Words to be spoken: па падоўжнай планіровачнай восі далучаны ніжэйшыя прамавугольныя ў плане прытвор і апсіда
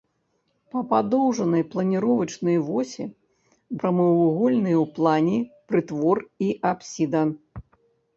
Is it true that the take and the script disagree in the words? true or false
true